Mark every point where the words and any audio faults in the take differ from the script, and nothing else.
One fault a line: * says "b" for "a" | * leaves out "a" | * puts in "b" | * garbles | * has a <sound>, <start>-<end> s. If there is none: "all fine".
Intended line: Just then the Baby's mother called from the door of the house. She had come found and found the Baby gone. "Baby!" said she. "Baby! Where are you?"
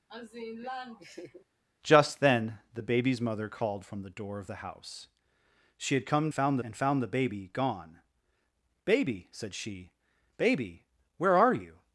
* has a laugh, 0.1-1.4 s